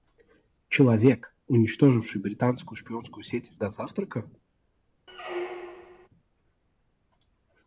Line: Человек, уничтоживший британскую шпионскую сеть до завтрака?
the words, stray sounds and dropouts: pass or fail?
fail